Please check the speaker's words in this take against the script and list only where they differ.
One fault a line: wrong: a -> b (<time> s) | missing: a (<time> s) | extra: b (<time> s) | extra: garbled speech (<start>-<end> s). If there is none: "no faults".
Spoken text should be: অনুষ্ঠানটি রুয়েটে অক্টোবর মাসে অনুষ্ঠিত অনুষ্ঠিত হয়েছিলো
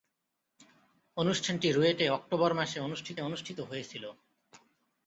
no faults